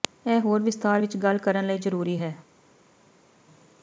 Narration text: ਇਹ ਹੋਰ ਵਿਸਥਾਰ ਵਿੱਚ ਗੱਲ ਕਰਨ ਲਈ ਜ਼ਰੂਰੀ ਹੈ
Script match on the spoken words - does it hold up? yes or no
yes